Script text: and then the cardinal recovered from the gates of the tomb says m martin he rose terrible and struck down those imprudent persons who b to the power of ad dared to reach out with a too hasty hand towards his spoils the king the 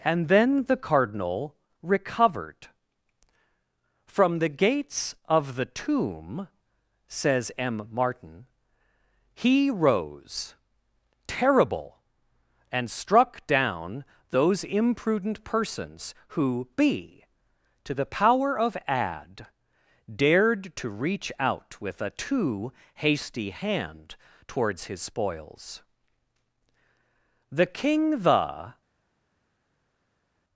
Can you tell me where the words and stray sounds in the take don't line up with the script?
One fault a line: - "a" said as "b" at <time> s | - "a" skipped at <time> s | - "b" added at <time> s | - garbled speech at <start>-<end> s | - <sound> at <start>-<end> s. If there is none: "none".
none